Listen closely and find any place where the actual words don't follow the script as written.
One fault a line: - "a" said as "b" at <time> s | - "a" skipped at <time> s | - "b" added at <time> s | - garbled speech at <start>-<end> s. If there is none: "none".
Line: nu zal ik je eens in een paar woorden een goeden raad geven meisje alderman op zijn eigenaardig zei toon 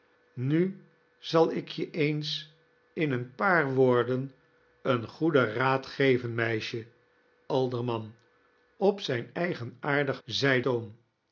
none